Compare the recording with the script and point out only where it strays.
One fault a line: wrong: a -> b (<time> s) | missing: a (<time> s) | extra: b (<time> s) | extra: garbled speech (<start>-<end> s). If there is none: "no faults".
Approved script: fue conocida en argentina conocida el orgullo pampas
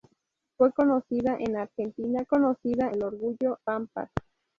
no faults